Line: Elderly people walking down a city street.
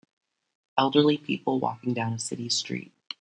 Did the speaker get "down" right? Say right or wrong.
right